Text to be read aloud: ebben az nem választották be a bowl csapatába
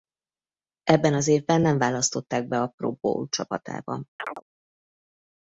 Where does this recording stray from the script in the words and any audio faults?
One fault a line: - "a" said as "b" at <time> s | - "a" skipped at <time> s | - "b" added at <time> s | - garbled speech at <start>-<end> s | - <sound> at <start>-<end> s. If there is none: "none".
- "évben" added at 1.3 s
- "pro" added at 2.8 s
- chirp at 4.2-4.4 s